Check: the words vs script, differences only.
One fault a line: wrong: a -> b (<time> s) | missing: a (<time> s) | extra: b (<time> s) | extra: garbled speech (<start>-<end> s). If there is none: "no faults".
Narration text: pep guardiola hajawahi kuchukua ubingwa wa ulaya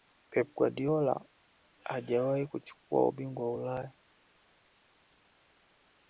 no faults